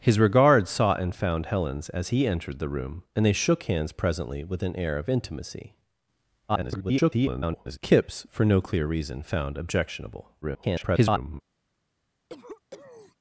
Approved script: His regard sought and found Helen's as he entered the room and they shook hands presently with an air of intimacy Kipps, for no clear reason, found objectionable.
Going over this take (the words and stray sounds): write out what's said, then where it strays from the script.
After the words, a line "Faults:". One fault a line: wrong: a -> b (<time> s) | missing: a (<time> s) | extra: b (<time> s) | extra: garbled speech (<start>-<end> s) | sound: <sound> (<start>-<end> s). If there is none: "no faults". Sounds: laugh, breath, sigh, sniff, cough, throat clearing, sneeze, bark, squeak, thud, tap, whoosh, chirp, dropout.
His regard sought and found Helen's as he entered the room and they shook hands presently with an air of intimacy [garbled] Kipps, for no clear reason, found objectionable. [garbled]
Faults:
extra: garbled speech (6.5-7.8 s)
extra: garbled speech (10.4-11.4 s)
sound: cough (12.3-13.2 s)